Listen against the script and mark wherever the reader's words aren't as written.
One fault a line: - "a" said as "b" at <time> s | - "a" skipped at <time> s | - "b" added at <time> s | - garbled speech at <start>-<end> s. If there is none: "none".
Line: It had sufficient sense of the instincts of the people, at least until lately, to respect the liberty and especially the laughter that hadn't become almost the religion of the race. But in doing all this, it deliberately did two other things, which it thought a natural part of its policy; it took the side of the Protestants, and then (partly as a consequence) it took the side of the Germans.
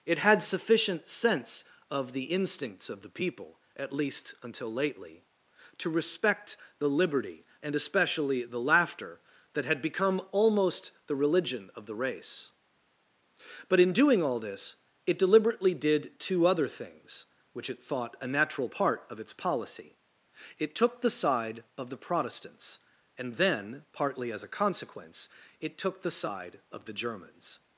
- "hadn't" said as "had" at 9.7 s